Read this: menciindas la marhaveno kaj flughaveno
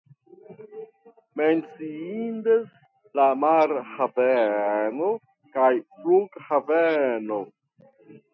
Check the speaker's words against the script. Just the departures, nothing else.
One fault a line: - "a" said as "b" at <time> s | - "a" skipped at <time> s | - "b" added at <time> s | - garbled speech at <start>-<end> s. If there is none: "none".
none